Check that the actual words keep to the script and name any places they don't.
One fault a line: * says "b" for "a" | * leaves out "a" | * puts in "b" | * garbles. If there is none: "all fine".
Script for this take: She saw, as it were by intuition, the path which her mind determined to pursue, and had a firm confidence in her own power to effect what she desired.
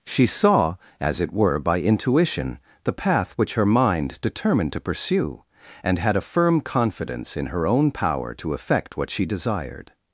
all fine